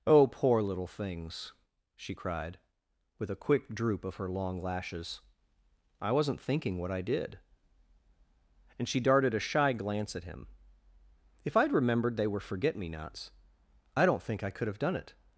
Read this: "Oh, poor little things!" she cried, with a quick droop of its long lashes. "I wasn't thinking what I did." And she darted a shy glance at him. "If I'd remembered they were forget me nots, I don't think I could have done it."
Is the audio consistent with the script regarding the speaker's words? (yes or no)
no